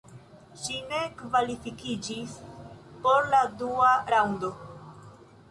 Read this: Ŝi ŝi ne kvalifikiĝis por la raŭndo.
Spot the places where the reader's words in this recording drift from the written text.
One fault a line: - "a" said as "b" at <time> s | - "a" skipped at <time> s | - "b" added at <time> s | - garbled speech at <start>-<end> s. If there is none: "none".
- "ŝi" skipped at 0.8 s
- "dua" added at 3.6 s